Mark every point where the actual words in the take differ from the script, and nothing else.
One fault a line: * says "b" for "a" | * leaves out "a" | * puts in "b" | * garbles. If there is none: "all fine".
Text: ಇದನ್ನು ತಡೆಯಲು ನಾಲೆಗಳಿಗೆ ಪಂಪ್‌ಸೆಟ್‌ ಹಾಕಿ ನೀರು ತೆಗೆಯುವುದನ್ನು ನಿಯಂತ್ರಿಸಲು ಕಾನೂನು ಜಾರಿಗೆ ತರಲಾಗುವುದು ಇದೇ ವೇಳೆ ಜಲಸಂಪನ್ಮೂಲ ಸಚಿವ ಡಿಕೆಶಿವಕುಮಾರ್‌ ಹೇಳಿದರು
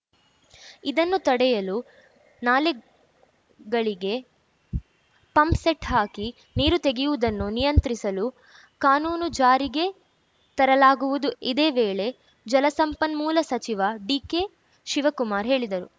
all fine